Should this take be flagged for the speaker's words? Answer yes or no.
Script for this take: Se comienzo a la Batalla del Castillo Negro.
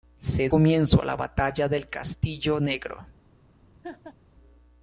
no